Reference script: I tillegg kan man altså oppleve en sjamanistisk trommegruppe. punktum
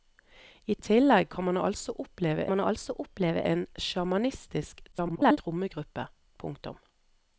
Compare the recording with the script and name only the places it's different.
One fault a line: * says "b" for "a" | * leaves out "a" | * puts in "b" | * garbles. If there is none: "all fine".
* puts in "man altså oppleve"
* garbles